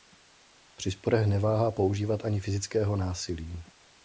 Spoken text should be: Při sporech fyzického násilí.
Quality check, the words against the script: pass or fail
fail